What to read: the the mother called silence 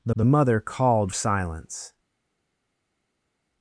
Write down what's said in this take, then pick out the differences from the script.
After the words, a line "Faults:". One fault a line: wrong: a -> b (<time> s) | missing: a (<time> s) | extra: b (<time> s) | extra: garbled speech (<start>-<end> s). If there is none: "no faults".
the the mother called silence
Faults:
no faults